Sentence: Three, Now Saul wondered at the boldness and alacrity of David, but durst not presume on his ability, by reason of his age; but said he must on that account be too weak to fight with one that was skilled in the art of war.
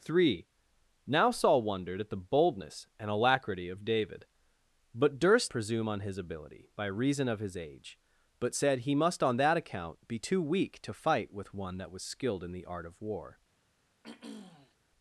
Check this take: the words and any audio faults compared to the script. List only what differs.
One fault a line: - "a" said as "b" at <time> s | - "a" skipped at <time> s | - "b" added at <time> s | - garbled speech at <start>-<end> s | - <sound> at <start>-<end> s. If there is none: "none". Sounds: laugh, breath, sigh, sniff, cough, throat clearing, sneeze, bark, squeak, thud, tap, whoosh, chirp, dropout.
- "not" skipped at 5.5 s
- throat clearing at 14.0-14.8 s